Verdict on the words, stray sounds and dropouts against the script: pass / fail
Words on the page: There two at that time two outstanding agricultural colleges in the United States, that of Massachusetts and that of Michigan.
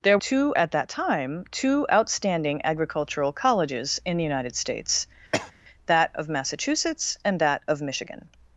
fail